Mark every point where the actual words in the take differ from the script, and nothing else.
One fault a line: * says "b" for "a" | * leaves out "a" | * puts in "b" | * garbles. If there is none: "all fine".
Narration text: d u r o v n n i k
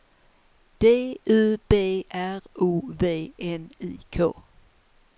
* puts in "b"
* leaves out "n"